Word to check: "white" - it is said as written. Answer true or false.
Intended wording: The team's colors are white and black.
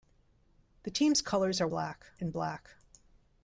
false